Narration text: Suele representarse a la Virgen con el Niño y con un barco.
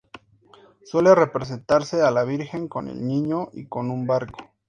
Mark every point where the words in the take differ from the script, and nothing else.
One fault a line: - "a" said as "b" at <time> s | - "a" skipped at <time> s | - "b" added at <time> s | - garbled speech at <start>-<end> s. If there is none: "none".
none